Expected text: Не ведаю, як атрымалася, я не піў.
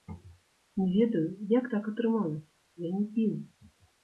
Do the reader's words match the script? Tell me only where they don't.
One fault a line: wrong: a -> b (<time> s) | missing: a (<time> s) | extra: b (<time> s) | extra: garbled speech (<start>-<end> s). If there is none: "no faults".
extra: так (1.7 s)